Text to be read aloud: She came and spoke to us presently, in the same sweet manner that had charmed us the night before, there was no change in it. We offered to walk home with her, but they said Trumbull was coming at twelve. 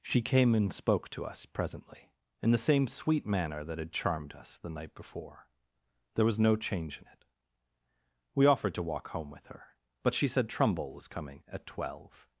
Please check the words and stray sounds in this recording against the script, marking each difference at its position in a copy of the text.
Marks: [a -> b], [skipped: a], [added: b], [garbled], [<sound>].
She came and spoke to us presently, in the same sweet manner that had charmed us the night before, there was no change in it. We offered to walk home with her, but [they -> she] said Trumbull was coming at twelve.